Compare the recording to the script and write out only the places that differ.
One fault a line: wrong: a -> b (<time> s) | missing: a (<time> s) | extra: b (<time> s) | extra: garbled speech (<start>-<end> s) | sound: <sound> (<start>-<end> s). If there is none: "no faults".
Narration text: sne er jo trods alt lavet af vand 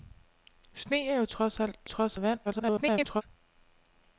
wrong: lavet -> trods (1.8 s)
extra: garbled speech (2.4-3.2 s)